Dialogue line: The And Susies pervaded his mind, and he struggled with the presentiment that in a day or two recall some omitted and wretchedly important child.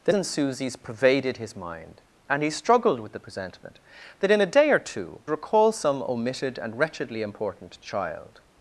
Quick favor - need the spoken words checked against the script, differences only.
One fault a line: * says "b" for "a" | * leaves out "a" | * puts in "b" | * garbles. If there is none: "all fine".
all fine